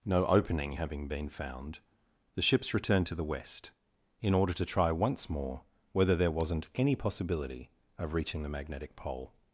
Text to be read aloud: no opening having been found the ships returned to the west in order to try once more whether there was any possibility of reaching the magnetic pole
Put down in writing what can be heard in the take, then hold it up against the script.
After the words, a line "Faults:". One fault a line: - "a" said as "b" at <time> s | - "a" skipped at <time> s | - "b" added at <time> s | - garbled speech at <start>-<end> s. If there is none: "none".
no opening having been found the ships returned to the west in order to try once more whether there wasn't any possibility of reaching the magnetic pole
Faults:
- "was" said as "wasn't" at 6.3 s